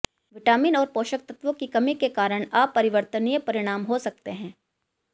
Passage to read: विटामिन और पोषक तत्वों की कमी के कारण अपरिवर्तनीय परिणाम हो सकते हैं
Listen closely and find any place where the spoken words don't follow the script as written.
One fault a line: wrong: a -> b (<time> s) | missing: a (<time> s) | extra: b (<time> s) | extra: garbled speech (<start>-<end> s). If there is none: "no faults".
no faults